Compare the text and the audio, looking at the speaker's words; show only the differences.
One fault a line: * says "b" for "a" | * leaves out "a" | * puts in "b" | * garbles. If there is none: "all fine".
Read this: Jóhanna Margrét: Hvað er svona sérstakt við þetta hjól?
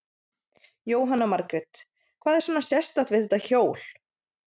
all fine